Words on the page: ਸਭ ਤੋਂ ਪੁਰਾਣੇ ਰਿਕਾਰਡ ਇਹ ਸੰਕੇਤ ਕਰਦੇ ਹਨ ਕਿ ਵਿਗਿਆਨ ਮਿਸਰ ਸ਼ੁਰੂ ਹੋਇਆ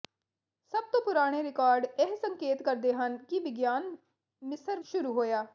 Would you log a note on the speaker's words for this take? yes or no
no